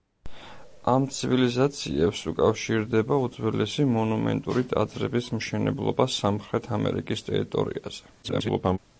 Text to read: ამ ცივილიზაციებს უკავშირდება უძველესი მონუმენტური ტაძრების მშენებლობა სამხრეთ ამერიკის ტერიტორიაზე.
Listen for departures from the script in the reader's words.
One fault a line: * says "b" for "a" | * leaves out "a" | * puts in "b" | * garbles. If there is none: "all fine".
* garbles